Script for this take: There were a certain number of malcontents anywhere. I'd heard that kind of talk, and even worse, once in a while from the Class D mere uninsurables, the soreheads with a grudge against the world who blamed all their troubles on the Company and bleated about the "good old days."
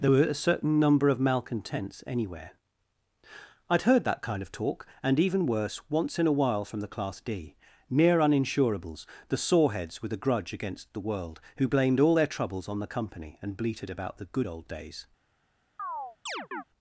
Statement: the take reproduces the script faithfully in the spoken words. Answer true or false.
true